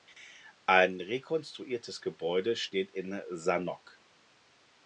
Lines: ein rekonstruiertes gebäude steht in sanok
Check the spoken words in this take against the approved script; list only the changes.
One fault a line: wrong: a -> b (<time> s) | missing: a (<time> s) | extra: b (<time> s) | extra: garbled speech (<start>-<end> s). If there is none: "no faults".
no faults